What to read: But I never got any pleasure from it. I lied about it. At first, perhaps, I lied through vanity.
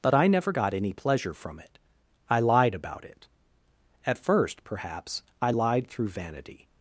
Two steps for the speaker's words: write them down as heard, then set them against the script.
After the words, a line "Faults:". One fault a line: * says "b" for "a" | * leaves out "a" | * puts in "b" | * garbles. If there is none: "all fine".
But I never got any pleasure from it. I lied about it. At first, perhaps, I lied through vanity.
Faults:
all fine